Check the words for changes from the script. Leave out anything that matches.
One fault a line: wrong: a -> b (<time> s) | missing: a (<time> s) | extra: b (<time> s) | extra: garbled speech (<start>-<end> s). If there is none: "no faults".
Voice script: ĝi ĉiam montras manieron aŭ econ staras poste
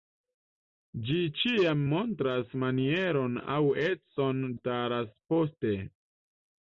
no faults